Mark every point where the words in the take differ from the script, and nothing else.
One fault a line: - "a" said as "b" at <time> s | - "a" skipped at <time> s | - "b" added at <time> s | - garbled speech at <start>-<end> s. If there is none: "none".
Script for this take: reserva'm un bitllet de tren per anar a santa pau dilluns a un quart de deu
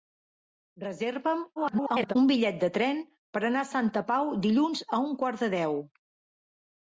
- garbled speech at 1.6-2.1 s